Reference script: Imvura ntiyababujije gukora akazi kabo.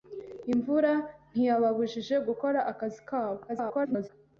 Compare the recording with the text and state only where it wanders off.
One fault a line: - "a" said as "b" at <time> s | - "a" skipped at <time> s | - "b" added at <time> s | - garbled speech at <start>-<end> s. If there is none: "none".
- garbled speech at 3.5-4.1 s